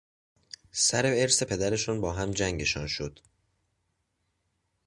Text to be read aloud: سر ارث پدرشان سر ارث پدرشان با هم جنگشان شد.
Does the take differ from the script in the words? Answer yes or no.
yes